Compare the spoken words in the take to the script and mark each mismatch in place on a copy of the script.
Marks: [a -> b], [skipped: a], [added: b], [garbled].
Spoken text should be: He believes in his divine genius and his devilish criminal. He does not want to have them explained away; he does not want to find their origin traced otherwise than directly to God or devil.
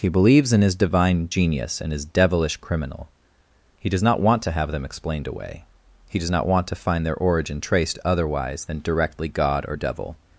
He believes in his divine genius and his devilish criminal. He does not want to have them explained away; he does not want to find their origin traced otherwise than directly [skipped: to] God or devil.